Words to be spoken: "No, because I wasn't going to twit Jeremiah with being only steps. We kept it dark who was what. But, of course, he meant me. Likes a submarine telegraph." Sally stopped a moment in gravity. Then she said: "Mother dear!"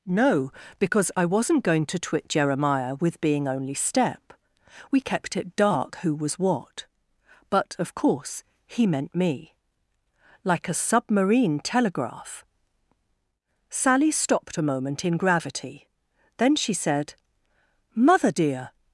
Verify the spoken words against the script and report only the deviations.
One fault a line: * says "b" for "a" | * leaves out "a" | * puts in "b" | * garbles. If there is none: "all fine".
* says "step" for "steps"
* says "Like" for "Likes"